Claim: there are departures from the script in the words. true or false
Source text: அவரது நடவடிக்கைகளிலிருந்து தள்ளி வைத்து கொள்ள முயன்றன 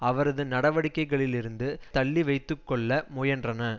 false